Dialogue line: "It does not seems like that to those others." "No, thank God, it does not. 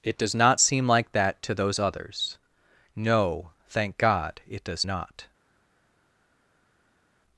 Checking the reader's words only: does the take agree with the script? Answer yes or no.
no